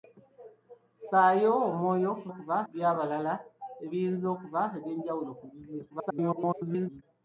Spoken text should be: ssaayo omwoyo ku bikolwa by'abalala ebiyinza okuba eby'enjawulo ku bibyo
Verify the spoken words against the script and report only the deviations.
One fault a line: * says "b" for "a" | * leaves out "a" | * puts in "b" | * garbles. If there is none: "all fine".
* says "okuba" for "bikolwa"
* garbles